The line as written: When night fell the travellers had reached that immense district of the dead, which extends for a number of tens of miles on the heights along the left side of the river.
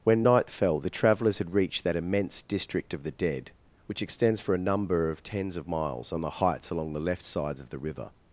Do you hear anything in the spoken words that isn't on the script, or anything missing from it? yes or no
yes